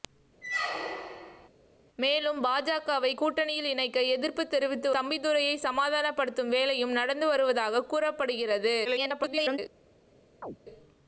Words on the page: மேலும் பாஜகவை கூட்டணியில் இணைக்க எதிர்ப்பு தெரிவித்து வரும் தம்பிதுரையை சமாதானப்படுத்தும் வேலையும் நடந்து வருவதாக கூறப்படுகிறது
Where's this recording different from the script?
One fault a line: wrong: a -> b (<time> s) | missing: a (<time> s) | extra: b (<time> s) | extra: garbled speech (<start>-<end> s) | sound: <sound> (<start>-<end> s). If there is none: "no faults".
sound: squeak (0.4-1.5 s)
missing: வரும் (4.9 s)
extra: garbled speech (8.8-9.6 s)
sound: chirp (10.4-10.6 s)